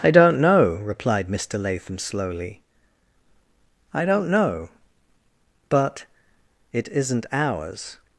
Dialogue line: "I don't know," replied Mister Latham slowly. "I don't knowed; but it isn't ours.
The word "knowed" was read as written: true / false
false